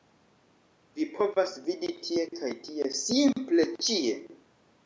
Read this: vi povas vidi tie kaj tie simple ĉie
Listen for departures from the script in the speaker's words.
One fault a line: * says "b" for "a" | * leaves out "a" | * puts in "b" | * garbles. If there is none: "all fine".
all fine